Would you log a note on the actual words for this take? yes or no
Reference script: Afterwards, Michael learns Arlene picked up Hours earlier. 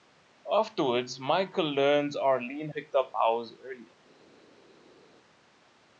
no